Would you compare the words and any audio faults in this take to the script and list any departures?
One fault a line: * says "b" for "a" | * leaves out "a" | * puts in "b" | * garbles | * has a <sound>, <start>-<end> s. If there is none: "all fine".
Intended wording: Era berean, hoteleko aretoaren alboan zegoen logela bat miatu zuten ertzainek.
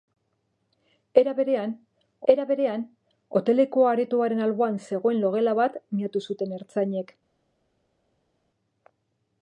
* puts in "era berean"